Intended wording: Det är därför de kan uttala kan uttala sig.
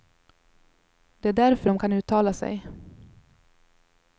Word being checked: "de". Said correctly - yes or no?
yes